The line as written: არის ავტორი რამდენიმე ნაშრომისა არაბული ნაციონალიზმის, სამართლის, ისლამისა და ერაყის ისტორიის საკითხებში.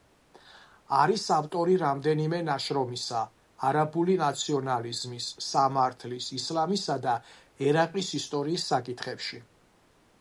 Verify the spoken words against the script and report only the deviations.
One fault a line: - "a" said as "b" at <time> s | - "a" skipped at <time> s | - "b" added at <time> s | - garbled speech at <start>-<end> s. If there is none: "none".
none